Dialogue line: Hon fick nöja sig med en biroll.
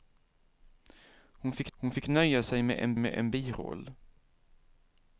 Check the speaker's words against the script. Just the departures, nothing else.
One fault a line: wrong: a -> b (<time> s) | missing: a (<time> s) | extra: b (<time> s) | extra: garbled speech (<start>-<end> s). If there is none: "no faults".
extra: hon fick (1.7 s)
extra: med en (3.0 s)